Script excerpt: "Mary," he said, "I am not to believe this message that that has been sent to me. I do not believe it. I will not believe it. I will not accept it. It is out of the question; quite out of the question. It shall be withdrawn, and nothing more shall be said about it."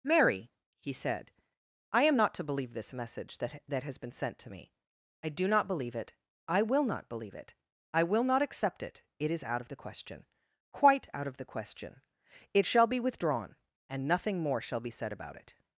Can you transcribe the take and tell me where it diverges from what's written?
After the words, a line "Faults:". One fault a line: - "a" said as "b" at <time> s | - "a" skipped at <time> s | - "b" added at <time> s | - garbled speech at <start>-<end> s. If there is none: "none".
"Mary," he said, "I am not to believe this message that that has been sent to me. I do not believe it. I will not believe it. I will not accept it. It is out of the question; quite out of the question. It shall be withdrawn, and nothing more shall be said about it."
Faults:
none